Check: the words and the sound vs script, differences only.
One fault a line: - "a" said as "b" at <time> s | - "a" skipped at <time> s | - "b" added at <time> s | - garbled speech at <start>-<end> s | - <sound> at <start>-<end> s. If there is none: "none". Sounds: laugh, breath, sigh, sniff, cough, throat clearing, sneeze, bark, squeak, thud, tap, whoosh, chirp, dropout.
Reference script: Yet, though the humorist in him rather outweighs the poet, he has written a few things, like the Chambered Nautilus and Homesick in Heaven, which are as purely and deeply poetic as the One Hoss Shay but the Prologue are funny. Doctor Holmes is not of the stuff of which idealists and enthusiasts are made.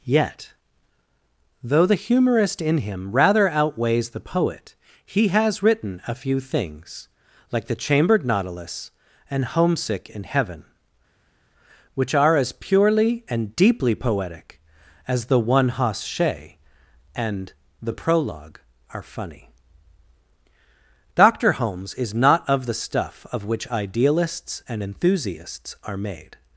- "but" said as "and" at 17.1 s